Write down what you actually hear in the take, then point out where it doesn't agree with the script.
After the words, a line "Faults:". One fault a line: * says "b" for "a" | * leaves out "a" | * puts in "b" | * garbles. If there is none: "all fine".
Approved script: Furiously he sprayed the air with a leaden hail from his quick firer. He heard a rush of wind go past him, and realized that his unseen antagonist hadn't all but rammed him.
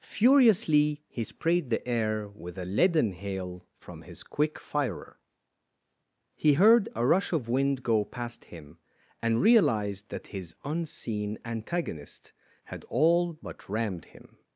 Furiously he sprayed the air with a leaden hail from his quick firer. He heard a rush of wind go past him, and realized that his unseen antagonist had all but rammed him.
Faults:
* says "had" for "hadn't"